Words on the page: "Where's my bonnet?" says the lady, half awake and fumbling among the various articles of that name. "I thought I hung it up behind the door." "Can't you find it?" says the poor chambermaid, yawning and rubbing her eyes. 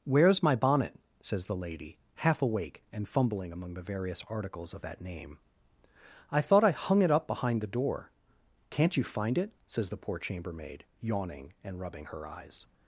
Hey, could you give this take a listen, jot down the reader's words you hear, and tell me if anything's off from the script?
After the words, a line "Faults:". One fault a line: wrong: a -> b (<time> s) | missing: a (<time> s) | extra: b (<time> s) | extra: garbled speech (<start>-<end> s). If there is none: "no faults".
"Where's my bonnet?" says the lady, half awake and fumbling among the various articles of that name. "I thought I hung it up behind the door." "Can't you find it?" says the poor chambermaid, yawning and rubbing her eyes.
Faults:
no faults